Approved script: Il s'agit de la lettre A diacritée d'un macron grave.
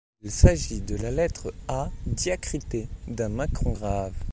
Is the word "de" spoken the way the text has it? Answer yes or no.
yes